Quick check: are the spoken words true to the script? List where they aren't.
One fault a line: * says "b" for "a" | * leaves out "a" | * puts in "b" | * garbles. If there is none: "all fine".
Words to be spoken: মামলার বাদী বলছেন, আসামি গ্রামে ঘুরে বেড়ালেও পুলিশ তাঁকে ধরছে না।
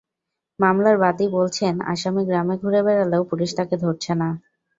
all fine